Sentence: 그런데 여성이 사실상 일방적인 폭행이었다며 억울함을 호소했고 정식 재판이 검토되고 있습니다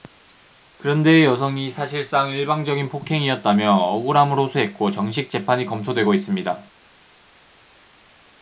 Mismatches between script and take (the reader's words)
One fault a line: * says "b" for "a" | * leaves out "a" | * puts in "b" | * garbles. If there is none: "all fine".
all fine